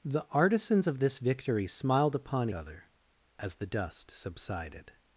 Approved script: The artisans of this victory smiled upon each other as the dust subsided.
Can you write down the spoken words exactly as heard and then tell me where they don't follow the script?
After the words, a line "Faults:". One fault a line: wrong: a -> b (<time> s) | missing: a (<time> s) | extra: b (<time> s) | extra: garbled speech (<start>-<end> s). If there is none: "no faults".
The artisans of this victory smiled upon other as the dust subsided.
Faults:
missing: each (2.5 s)